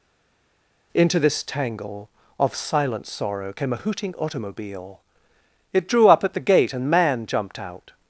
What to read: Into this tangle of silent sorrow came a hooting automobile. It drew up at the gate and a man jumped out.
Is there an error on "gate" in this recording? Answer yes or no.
no